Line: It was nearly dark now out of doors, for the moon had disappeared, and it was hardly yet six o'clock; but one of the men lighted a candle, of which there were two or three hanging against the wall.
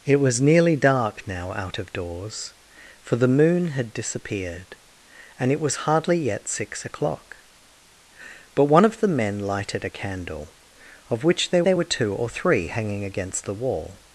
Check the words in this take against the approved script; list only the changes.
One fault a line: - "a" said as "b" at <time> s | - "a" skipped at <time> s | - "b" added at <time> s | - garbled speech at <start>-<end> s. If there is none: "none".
- "there" added at 11.6 s